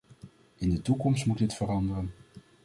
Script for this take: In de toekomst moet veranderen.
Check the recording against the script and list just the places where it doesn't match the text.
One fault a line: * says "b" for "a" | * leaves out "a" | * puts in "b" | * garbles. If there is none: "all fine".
* puts in "dit"